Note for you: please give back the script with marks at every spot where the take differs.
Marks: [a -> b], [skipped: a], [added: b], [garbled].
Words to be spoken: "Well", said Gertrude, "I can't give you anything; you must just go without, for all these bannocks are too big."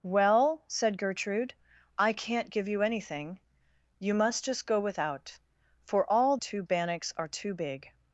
"Well", said Gertrude, "I can't give you anything; you must just go without, for all [these -> too] bannocks are too big."